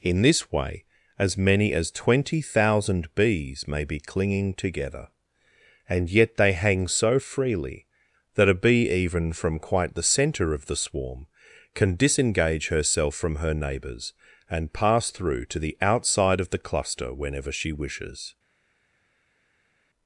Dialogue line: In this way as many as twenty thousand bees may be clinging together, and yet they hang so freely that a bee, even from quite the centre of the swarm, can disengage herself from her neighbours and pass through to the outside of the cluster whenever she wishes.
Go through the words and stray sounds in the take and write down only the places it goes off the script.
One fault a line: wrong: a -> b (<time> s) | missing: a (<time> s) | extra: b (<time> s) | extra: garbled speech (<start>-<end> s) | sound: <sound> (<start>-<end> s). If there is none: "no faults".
no faults